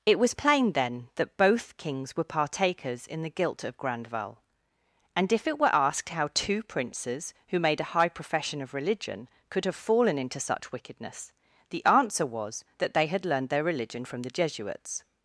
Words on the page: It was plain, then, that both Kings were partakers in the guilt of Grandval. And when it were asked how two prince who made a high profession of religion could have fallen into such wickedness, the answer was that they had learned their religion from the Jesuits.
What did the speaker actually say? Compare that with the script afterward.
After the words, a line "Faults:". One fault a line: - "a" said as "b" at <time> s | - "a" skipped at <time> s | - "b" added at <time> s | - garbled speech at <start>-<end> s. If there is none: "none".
It was plain, then, that both Kings were partakers in the guilt of Grandval. And if it were asked how two princes who made a high profession of religion could have fallen into such wickedness, the answer was that they had learned their religion from the Jesuits.
Faults:
- "when" said as "if" at 5.3 s
- "prince" said as "princes" at 6.6 s